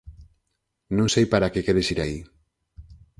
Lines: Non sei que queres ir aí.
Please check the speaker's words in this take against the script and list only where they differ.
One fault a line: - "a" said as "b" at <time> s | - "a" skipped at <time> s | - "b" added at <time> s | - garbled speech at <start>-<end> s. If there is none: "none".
- "para" added at 1.3 s